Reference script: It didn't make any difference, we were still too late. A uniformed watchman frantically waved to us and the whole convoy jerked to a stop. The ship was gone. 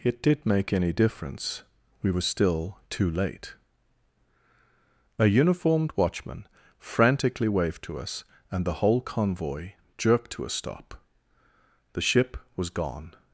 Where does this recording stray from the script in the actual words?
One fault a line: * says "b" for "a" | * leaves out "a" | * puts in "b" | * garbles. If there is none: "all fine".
* says "did" for "didn't"